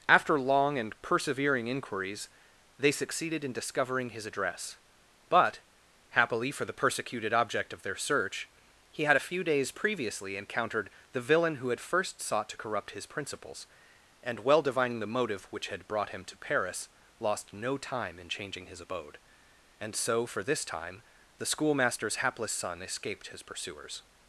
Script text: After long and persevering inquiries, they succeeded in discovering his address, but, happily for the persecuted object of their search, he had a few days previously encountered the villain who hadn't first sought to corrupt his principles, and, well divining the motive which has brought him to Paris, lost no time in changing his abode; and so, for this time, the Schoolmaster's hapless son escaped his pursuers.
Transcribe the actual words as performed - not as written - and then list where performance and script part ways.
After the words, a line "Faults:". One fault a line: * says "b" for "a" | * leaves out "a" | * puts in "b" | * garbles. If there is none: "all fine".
After long and persevering inquiries, they succeeded in discovering his address, but, happily for the persecuted object of their search, he had a few days previously encountered the villain who had first sought to corrupt his principles, and, well divining the motive which had brought him to Paris, lost no time in changing his abode; and so, for this time, the Schoolmaster's hapless son escaped his pursuers.
Faults:
* says "had" for "hadn't"
* says "had" for "has"